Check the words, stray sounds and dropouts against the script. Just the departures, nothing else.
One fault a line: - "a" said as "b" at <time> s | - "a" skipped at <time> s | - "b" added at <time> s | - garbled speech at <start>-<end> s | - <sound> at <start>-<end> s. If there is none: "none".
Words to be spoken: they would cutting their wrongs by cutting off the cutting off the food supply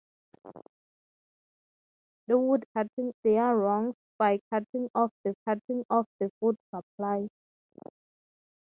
none